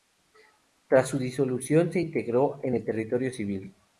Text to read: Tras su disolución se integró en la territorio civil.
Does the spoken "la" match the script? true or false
false